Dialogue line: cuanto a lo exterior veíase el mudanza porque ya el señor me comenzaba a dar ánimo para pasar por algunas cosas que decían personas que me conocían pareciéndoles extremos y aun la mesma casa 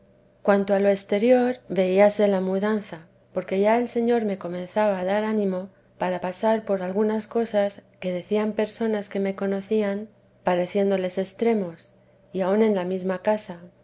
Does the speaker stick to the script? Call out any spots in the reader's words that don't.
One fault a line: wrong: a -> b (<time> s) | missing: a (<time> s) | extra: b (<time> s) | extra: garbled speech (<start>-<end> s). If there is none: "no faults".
wrong: el -> la (2.3 s)
extra: en (12.6 s)